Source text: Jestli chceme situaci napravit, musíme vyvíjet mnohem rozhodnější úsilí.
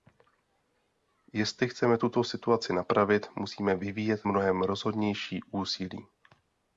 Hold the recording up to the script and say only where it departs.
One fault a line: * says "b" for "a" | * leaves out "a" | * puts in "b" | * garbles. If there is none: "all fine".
* puts in "tuto"